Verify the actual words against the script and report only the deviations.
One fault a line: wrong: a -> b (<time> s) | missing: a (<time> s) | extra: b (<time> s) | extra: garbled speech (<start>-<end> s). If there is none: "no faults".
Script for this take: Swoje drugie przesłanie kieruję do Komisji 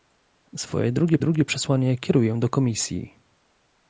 extra: drugie (1.2 s)